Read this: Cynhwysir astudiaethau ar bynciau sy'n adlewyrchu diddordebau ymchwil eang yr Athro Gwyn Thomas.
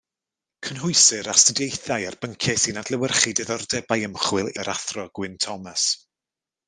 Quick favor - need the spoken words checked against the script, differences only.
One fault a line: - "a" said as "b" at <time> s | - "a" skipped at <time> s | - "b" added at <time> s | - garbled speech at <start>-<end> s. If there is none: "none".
- "eang" skipped at 4.5 s